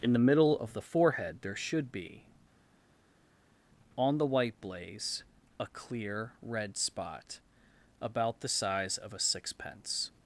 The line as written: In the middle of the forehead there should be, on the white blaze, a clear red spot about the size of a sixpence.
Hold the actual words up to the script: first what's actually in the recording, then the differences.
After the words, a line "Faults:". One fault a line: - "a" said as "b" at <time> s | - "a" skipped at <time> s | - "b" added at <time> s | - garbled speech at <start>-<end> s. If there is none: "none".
In the middle of the forehead there should be, on the white blaze, a clear red spot about the size of a sixpence.
Faults:
none